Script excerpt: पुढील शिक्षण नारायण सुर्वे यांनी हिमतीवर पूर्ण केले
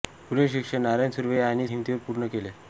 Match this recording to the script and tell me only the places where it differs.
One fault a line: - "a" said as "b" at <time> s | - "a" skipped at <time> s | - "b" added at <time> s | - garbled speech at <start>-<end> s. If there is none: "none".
none